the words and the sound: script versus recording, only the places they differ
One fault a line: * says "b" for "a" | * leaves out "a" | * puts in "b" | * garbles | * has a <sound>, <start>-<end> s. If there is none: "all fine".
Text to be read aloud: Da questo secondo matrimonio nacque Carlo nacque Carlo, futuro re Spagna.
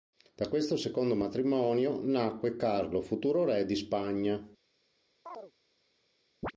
* leaves out "nacque Carlo"
* puts in "di"
* has a chirp, 5.3-5.5 s
* has a chirp, 6.4-6.5 s